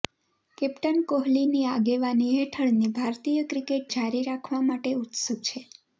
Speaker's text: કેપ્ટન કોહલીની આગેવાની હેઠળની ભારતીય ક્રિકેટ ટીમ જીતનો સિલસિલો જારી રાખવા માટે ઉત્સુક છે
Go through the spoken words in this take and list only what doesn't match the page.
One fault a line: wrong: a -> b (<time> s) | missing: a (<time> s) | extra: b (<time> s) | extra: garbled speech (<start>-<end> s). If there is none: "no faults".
missing: ટીમ જીતનો સિલસિલો (3.9 s)